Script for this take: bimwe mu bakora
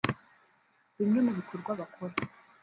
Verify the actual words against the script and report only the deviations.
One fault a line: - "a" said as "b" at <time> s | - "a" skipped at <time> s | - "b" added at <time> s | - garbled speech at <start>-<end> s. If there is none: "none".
- "bikorwa" added at 1.4 s